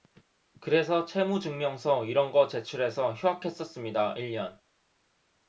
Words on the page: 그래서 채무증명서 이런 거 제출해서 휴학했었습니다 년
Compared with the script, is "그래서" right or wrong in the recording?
right